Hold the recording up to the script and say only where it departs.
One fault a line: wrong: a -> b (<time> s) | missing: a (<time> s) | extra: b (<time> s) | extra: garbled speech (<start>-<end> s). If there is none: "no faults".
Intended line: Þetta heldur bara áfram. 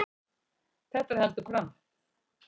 missing: bara (1.5 s)